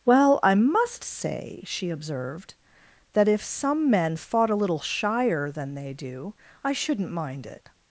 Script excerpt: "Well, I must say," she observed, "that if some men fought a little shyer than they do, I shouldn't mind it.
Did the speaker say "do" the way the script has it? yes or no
yes